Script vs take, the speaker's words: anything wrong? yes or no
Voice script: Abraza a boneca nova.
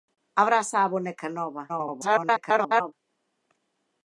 yes